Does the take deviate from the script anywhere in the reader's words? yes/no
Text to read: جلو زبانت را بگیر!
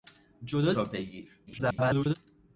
yes